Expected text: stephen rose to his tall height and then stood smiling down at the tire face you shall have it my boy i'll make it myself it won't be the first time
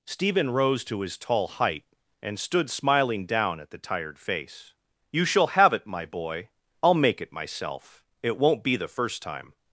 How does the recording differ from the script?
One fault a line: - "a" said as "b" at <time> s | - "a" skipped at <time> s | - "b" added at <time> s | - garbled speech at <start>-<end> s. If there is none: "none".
- "then" skipped at 2.4 s
- "tire" said as "tired" at 3.8 s